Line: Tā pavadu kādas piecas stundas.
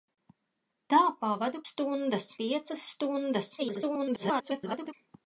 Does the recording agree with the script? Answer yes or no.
no